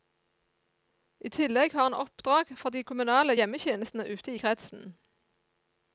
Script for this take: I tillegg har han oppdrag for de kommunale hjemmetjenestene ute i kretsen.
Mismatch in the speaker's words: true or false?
false